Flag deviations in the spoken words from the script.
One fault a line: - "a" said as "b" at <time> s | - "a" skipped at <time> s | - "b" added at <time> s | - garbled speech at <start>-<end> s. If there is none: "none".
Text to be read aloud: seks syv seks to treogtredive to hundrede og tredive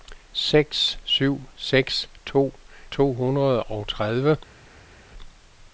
- "treogtredive" skipped at 2.5 s